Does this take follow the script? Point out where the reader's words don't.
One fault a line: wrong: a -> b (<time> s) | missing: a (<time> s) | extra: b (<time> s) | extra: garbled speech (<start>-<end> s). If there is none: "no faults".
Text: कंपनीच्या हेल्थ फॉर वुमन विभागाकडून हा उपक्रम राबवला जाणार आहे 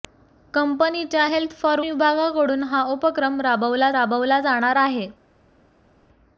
missing: वुमन (1.8 s)
extra: राबवला (3.9 s)